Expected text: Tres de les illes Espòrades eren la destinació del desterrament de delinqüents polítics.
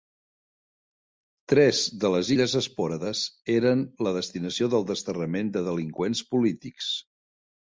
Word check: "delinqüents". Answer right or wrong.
right